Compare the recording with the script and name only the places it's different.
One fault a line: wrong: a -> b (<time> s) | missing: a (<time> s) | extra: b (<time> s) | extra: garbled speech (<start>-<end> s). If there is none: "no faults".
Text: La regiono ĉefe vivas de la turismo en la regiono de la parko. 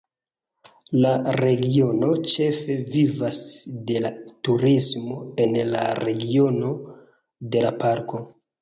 no faults